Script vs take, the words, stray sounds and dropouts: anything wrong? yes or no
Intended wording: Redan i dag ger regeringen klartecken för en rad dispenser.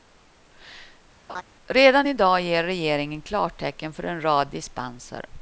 yes